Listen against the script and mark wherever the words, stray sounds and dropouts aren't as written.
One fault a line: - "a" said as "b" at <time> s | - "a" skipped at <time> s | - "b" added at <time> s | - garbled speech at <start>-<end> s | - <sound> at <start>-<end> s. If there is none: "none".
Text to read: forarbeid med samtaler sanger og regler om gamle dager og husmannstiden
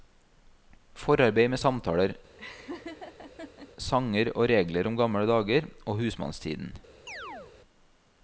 - laugh at 2.4-3.7 s
- chirp at 7.1-7.5 s